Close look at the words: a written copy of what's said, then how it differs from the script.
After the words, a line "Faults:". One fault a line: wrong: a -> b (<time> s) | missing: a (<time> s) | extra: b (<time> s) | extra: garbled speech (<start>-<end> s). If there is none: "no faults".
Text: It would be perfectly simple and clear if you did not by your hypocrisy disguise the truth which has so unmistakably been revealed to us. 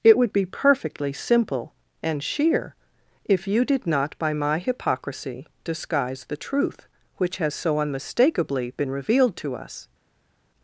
It would be perfectly simple and sheer if you did not by my hypocrisy disguise the truth which has so unmistakably been revealed to us.
Faults:
wrong: clear -> sheer (2.2 s)
wrong: your -> my (4.3 s)